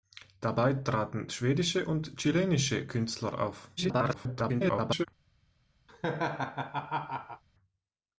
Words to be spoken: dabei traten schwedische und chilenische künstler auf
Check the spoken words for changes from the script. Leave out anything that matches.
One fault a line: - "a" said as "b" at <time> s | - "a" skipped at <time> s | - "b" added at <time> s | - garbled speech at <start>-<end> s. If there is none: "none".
- garbled speech at 3.8-5.1 s